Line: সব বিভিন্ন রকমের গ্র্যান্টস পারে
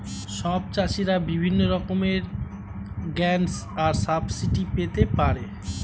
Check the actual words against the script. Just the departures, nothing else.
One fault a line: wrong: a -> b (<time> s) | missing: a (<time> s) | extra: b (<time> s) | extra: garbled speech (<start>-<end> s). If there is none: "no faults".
extra: চাষীরা (0.7 s)
extra: আর সাবসিডি পেতে (3.8 s)